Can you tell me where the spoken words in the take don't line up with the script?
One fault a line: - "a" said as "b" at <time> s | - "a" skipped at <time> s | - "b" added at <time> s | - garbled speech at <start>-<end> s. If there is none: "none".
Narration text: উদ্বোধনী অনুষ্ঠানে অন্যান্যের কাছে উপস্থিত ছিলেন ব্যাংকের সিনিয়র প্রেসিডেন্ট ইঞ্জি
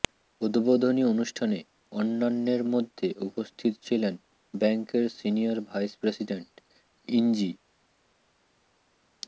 - "কাছে" said as "মধ্যে" at 2.7 s
- "ভাইস" added at 5.7 s